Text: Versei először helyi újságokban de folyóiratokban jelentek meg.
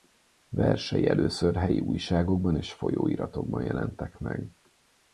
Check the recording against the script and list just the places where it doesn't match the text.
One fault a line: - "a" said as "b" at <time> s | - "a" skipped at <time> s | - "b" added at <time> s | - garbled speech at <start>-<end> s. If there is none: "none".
- "de" said as "és" at 2.5 s